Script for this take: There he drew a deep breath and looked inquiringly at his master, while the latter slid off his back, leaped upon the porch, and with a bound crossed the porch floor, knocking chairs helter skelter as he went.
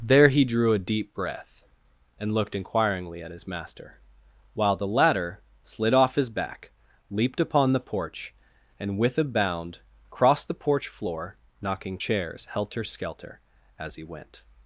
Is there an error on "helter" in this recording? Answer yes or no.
no